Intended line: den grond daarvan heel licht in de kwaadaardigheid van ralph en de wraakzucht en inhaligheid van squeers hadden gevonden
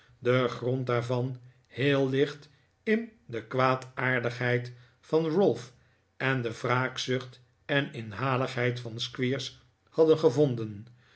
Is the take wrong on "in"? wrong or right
right